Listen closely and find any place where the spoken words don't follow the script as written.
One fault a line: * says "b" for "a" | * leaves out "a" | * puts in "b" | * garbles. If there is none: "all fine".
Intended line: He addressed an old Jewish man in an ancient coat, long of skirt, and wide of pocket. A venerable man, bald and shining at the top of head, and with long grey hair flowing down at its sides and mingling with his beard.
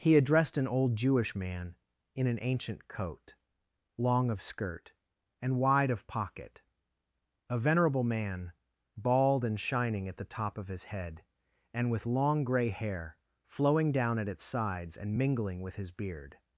* puts in "his"